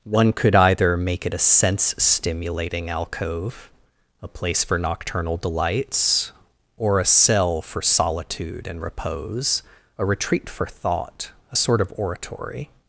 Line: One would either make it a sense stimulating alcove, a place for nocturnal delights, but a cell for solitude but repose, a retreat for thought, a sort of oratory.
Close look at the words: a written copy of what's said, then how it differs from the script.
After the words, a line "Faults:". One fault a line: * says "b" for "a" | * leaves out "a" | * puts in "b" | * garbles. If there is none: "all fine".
One could either make it a sense stimulating alcove, a place for nocturnal delights, or a cell for solitude and repose, a retreat for thought, a sort of oratory.
Faults:
* says "could" for "would"
* says "or" for "but"
* says "and" for "but"